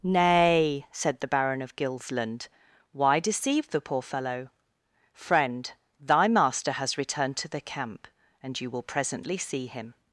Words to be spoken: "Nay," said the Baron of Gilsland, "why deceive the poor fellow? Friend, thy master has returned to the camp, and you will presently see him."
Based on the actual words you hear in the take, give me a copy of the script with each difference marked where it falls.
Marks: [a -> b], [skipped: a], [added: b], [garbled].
"Nay," said the Baron of Gilsland, "why deceive the poor fellow? Friend, thy master has returned to the camp, and you will presently see him."